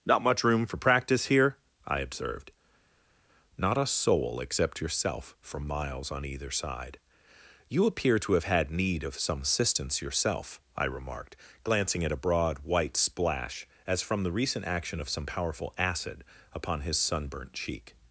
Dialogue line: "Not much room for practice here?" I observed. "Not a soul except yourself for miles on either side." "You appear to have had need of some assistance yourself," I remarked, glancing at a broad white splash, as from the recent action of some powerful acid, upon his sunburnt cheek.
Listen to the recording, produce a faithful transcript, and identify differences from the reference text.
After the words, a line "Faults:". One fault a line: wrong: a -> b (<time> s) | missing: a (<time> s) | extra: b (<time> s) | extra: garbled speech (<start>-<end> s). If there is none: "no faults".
"Not much room for practice here?" I observed. "Not a soul except yourself for miles on either side." "You appear to have had need of some assistance yourself," I remarked, glancing at a broad white splash, as from the recent action of some powerful acid, upon his sunburnt cheek.
Faults:
no faults